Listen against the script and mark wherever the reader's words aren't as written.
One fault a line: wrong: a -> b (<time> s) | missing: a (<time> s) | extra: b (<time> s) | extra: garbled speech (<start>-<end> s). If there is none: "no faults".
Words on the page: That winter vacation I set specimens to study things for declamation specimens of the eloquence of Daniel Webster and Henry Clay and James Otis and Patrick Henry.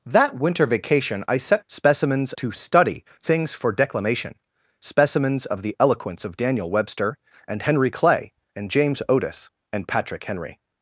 no faults